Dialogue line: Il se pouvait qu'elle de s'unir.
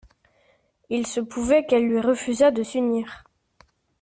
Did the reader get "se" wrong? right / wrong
right